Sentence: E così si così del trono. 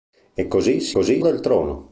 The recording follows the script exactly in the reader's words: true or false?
true